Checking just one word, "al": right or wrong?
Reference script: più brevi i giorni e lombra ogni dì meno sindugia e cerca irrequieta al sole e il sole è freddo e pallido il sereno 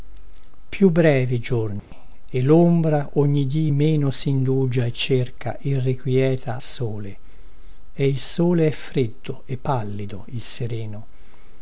wrong